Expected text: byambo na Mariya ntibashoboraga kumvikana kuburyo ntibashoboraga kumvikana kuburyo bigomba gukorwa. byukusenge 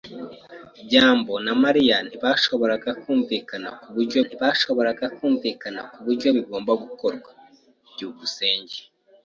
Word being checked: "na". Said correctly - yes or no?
yes